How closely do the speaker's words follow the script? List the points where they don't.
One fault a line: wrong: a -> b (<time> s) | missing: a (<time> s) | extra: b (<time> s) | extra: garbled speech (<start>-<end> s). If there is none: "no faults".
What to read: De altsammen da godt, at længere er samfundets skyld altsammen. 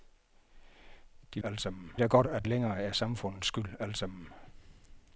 no faults